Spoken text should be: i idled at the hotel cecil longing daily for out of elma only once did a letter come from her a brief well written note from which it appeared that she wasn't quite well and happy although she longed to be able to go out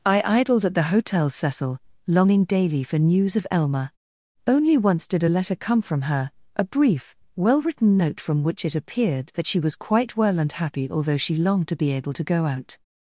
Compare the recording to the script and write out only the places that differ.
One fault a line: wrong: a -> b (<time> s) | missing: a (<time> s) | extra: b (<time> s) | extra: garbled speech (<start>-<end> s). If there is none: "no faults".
wrong: out -> news (3.0 s)
wrong: wasn't -> was (9.6 s)